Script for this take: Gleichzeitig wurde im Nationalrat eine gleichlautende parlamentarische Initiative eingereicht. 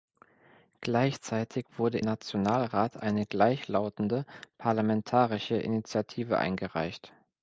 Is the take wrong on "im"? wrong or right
wrong